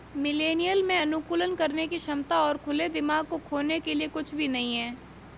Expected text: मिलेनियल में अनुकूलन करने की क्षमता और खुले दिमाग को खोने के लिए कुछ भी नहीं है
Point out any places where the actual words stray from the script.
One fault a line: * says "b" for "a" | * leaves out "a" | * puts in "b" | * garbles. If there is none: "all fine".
all fine